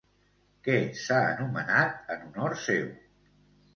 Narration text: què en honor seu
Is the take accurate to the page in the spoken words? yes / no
no